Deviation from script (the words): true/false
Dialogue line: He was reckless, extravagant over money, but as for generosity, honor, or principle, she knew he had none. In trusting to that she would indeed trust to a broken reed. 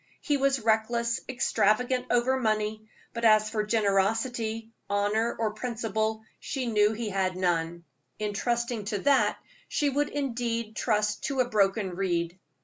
false